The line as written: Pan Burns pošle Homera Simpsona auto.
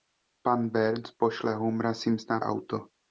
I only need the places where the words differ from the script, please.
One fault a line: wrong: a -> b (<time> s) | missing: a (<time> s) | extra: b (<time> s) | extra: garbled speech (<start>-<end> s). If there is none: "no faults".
no faults